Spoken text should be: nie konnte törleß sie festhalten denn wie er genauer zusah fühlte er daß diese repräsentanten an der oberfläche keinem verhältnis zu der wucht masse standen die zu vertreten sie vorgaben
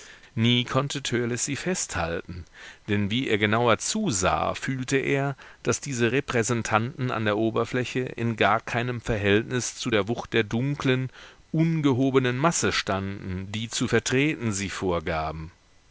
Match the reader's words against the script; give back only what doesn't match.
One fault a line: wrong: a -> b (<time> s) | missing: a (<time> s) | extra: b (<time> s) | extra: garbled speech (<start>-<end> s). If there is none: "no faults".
extra: in gar (8.0 s)
extra: der dunklen ungehobenen (10.3 s)